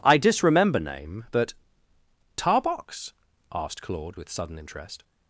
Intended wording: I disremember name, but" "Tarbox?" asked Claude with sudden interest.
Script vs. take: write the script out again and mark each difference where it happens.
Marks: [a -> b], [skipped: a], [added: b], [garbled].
I disremember name, but" "Tarbox?" asked Claude with sudden interest.